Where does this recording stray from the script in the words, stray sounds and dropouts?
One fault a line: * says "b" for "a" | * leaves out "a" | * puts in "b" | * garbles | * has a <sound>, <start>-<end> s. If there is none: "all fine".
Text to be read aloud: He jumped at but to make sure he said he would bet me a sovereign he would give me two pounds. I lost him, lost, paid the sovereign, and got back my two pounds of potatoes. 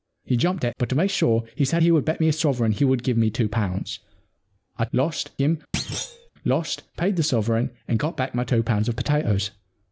* has a thud, 5.7-6.3 s